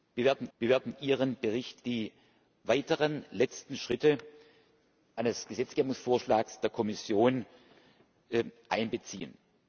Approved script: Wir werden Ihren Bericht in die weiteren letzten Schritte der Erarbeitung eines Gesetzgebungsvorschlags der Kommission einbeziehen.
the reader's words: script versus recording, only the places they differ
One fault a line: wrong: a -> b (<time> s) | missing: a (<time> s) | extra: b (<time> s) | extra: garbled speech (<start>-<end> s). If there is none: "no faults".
extra: wir werden (0.6 s)
missing: in (1.8 s)
missing: der Erarbeitung (4.2 s)